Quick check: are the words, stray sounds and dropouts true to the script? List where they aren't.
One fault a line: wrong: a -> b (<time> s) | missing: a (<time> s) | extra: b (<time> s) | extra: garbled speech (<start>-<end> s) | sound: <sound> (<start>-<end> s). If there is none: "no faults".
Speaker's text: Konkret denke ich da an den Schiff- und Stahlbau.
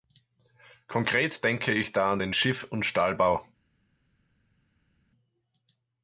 no faults